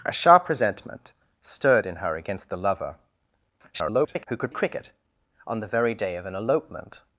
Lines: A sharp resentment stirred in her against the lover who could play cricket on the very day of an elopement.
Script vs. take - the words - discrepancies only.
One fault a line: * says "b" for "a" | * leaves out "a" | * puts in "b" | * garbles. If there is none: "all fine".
* garbles
* leaves out "play"